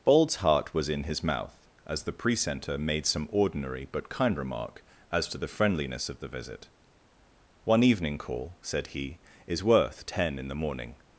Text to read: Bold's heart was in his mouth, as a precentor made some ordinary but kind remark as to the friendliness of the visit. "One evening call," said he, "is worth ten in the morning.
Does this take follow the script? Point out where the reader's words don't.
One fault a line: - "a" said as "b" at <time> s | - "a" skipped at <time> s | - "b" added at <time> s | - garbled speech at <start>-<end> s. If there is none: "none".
- "a" said as "the" at 2.0 s